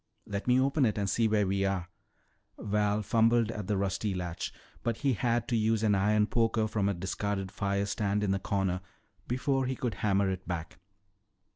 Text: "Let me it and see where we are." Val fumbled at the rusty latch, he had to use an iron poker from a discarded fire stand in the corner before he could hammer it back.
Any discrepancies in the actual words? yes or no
yes